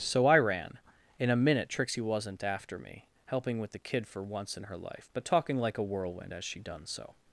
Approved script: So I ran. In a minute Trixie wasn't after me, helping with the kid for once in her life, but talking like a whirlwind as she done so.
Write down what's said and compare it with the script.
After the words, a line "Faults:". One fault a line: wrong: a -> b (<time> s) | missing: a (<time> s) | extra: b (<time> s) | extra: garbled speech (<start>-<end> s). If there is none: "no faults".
So I ran. In a minute Trixie wasn't after me, helping with the kid for once in her life, but talking like a whirlwind as she done so.
Faults:
no faults